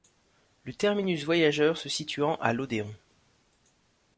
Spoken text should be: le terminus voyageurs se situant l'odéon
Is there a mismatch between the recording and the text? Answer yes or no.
yes